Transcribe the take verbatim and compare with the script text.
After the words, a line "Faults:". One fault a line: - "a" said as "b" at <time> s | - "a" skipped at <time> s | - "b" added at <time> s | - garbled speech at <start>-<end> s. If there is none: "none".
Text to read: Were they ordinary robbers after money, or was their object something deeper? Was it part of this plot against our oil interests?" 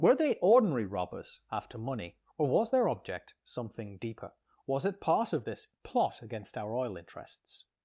Were they ordinary robbers after money, or was their object something deeper? Was it part of this plot against our oil interests?"
Faults:
none